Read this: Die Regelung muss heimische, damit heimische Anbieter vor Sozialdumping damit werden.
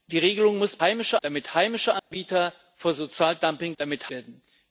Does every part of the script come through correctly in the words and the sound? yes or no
no